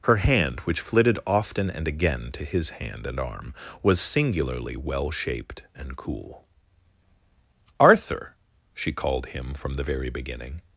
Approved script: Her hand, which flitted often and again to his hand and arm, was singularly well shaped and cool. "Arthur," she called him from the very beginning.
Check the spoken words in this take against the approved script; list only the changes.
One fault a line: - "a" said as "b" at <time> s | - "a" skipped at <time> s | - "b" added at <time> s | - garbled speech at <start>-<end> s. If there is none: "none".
none